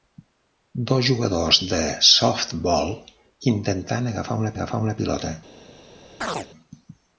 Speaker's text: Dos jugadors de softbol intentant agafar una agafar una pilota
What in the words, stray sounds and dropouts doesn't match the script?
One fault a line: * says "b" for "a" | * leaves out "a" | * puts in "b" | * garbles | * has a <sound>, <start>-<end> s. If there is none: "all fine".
* has a chirp, 6.2-6.5 s